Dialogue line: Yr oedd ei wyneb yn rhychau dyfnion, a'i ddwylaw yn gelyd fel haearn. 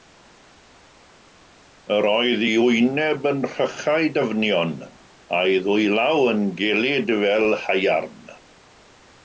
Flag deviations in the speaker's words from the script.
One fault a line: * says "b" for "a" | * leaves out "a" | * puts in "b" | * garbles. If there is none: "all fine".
all fine